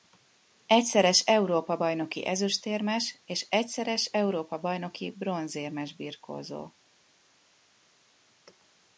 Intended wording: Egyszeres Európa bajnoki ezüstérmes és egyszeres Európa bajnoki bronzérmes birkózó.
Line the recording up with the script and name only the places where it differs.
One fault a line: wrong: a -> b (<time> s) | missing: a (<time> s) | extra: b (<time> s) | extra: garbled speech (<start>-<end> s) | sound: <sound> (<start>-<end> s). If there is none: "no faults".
no faults